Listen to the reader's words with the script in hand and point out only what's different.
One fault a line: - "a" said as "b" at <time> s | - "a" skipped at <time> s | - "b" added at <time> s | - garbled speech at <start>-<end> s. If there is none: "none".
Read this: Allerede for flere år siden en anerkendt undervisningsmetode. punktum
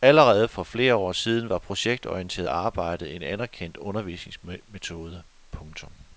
- "var projektorienteret arbejde" added at 1.5 s